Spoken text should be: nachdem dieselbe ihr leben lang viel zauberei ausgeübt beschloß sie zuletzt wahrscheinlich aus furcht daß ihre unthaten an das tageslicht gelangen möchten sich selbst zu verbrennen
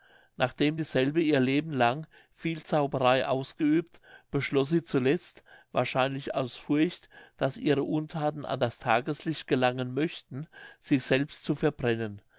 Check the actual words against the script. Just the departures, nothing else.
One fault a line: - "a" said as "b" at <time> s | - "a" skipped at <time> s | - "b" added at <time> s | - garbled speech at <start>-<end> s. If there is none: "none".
none